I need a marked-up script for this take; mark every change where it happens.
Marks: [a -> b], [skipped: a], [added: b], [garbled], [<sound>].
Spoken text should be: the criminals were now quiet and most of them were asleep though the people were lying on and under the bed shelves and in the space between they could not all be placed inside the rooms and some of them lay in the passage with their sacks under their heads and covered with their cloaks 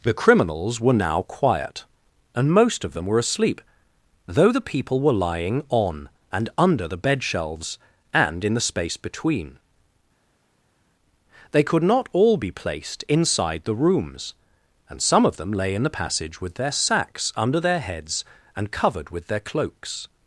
the criminals were now quiet and most of them were asleep though the people were lying on and under the bed shelves and in the space between they could not all be placed inside the rooms and some of them lay in the passage with their sacks under their heads and covered with their cloaks